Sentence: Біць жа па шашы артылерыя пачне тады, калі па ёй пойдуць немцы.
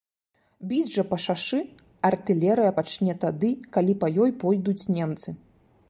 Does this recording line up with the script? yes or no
yes